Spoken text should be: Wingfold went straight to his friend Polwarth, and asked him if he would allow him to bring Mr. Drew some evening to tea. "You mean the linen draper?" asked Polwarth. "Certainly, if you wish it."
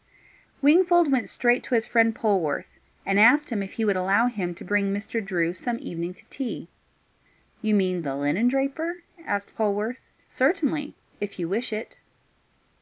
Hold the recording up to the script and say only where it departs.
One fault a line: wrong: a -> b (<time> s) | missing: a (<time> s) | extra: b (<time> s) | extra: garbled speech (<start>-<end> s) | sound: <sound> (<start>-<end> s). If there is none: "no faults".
no faults